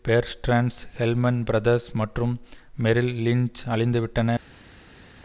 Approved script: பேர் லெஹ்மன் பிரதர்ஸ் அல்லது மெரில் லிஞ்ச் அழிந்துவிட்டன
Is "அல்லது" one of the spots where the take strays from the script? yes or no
yes